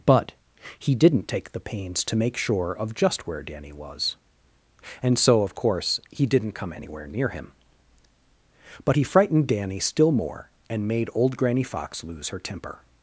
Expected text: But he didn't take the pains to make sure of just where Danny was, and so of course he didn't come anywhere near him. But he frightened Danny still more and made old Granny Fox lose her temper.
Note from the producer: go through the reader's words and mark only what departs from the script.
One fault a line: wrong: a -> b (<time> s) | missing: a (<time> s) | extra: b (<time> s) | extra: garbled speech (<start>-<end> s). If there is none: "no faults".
no faults